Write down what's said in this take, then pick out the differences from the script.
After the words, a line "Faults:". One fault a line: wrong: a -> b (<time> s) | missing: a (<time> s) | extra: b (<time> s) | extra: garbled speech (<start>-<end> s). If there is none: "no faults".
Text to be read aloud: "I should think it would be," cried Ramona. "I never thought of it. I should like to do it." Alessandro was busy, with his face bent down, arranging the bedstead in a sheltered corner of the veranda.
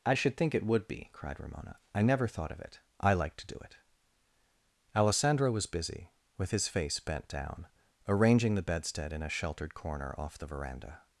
"I should think it would be," cried Ramona. "I never thought of it. I like to do it." Alessandro was busy, with his face bent down, arranging the bedstead in a sheltered corner off the veranda.
Faults:
missing: should (3.1 s)
wrong: of -> off (10.2 s)